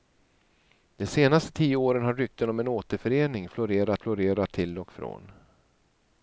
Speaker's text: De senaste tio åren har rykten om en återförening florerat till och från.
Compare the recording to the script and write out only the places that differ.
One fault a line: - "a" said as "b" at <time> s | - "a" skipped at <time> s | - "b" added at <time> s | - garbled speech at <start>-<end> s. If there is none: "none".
- "florerat" added at 4.0 s